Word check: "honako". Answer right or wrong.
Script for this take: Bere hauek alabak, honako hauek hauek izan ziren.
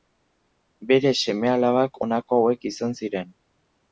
right